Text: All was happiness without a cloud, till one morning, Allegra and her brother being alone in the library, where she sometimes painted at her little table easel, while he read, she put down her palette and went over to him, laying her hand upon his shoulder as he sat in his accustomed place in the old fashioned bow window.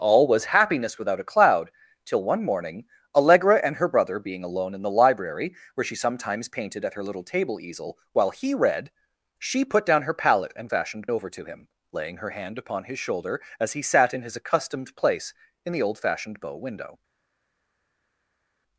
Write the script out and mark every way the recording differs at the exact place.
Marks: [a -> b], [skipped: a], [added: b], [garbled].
All was happiness without a cloud, till one morning, Allegra and her brother being alone in the library, where she sometimes painted at her little table easel, while he read, she put down her palette and [went -> fashioned] over to him, laying her hand upon his shoulder as he sat in his accustomed place in the old fashioned bow window.